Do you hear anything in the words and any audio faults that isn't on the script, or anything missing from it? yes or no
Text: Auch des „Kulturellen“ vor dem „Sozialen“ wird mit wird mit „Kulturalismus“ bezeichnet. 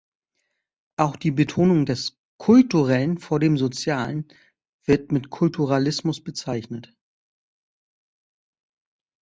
yes